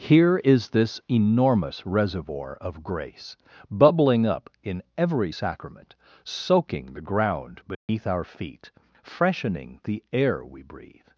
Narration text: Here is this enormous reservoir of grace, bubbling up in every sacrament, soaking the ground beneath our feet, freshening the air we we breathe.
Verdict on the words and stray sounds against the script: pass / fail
fail